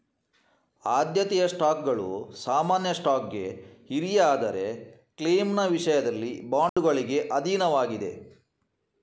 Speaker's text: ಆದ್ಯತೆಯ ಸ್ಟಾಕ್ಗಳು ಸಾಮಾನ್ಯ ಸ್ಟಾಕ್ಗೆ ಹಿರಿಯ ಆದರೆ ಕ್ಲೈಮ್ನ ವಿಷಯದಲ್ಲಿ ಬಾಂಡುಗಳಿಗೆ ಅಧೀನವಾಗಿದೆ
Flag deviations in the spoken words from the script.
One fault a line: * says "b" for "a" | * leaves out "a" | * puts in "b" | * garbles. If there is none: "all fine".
all fine